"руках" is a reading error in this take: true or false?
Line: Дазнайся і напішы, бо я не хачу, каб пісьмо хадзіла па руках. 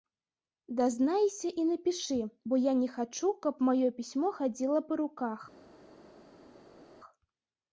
false